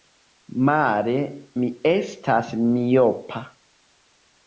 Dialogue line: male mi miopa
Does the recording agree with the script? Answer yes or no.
no